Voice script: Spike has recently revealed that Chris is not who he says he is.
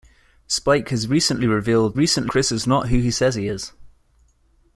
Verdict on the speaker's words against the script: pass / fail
fail